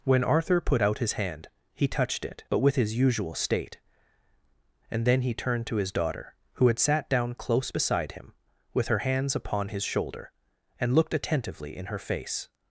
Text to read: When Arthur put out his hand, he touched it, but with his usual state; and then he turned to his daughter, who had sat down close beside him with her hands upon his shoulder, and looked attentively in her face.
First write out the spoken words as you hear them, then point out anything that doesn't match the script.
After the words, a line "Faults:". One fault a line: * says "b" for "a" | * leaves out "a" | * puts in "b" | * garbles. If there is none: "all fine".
When Arthur put out his hand, he touched it, but with his usual state; and then he turned to his daughter, who had sat down close beside him with her hands upon his shoulder, and looked attentively in her face.
Faults:
all fine